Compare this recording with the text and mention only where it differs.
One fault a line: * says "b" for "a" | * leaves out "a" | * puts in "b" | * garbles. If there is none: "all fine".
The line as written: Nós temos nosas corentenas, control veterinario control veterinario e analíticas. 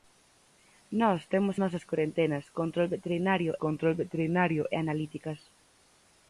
all fine